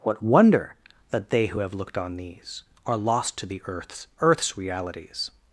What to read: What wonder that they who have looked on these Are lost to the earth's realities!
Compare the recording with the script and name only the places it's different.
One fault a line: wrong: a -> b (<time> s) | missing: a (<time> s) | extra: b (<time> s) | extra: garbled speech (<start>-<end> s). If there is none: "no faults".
extra: earth's (4.2 s)